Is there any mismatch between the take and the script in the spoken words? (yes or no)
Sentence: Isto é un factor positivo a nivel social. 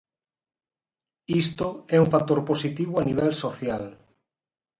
no